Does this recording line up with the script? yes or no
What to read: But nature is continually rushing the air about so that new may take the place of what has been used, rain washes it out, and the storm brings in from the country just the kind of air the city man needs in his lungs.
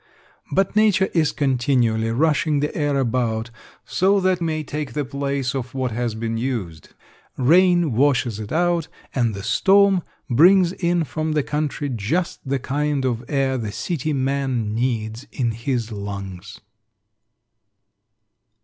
no